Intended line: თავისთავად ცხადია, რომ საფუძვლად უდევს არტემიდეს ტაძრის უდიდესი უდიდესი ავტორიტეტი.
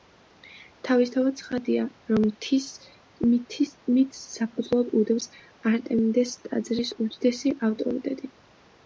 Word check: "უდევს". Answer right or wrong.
right